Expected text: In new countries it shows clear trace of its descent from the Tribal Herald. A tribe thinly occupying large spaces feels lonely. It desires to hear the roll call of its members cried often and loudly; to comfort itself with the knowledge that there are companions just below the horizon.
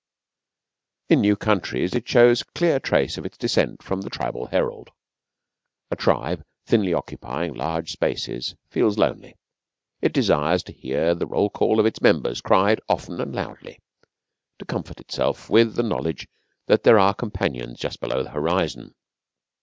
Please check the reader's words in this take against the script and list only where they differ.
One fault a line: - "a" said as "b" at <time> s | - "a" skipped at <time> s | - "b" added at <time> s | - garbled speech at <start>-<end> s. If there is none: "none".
none